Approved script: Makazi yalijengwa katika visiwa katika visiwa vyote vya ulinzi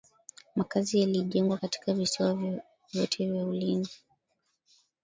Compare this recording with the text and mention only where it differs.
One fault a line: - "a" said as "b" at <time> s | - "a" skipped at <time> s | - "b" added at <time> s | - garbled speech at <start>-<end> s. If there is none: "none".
- "katika visiwa" skipped at 2.3 s